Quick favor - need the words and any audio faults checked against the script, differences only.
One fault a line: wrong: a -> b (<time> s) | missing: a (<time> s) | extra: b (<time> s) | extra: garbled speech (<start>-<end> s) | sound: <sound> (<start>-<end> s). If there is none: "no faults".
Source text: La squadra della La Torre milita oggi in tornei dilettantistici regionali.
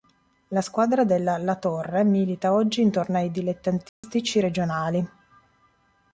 sound: dropout (3.9-4.0 s)